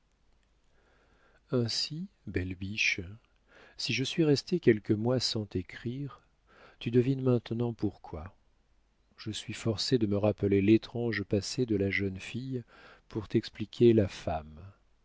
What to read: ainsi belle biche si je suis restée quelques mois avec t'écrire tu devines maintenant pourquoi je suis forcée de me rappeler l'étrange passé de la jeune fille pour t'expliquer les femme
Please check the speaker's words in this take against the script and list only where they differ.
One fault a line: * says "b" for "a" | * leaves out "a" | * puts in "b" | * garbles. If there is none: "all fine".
* says "sans" for "avec"
* says "la" for "les"